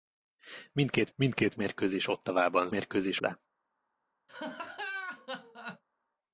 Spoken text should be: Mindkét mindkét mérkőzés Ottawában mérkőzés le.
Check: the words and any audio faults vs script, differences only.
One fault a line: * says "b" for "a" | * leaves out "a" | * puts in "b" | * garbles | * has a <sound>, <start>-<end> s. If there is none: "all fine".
* has a laugh, 4.3-5.8 s